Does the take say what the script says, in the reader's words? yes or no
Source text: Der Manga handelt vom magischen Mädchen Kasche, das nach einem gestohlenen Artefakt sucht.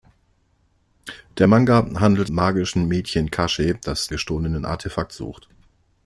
no